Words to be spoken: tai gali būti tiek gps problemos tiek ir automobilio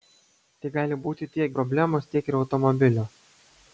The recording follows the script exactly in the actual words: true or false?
false